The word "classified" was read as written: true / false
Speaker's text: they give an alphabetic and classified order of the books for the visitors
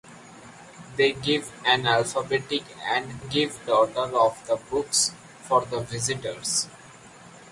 false